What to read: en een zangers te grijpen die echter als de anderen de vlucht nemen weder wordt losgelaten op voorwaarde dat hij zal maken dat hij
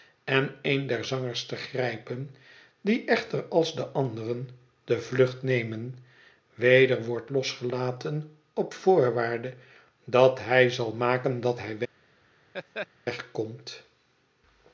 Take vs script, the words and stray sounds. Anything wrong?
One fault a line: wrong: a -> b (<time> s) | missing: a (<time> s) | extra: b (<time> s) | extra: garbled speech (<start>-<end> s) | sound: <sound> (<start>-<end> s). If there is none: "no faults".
extra: der (0.9 s)
sound: laugh (12.5-12.9 s)